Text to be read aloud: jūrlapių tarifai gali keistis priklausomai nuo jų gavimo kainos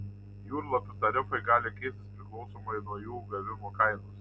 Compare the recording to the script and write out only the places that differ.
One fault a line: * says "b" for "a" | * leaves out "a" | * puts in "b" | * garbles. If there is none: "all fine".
all fine